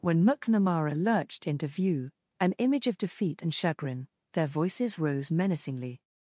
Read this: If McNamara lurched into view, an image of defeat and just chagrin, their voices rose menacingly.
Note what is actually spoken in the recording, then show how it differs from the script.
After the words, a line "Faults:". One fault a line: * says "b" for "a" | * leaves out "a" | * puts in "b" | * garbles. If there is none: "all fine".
When McNamara lurched into view, an image of defeat and chagrin, their voices rose menacingly.
Faults:
* says "When" for "If"
* leaves out "just"